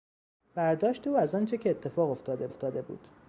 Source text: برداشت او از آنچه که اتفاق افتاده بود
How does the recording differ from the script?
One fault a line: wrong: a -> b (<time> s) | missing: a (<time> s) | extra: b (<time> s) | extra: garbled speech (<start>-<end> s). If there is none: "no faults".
extra: افتاده (2.5 s)